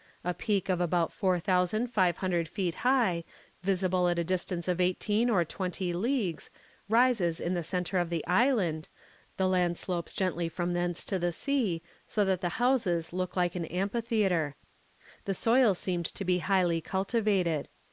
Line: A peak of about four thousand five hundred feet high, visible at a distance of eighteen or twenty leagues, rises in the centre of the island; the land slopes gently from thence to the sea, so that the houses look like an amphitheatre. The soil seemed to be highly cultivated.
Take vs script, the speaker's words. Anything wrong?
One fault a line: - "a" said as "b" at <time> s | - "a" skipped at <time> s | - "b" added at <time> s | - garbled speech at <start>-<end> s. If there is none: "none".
none